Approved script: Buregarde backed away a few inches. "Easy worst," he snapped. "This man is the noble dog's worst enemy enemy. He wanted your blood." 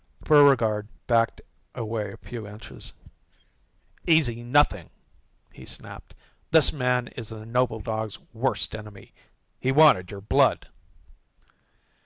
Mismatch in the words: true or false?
true